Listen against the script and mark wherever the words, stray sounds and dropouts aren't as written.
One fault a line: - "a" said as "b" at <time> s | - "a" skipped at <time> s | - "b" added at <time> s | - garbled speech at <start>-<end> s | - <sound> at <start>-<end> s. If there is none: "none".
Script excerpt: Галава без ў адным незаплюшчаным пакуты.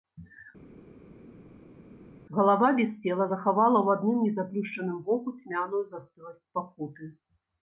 - "цела захавала" added at 3.1 s
- "воку цьмяную застыласць" added at 5.1 s